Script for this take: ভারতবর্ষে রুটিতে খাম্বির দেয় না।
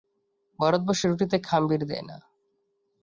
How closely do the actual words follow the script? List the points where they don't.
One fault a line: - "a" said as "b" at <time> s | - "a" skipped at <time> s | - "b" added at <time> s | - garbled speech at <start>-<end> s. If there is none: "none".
none